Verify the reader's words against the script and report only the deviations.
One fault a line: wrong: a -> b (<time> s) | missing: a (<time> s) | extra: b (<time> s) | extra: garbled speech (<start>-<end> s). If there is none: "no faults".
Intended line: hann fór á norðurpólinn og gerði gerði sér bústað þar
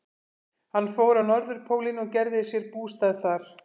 missing: gerði (2.5 s)